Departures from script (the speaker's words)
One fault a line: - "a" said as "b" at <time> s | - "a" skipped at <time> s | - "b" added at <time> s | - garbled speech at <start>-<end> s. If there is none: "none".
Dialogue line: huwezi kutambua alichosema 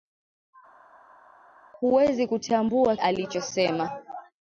none